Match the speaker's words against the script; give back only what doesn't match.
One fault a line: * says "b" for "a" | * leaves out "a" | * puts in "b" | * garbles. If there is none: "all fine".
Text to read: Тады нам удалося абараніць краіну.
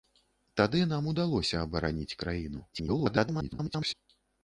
* garbles